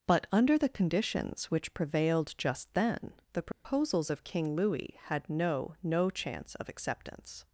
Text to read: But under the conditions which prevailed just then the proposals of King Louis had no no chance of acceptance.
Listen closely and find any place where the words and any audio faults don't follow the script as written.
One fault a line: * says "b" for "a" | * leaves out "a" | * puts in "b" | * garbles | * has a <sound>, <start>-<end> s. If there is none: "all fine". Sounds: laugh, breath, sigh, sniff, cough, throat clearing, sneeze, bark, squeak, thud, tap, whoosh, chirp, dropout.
* has a dropout, 3.5-3.6 s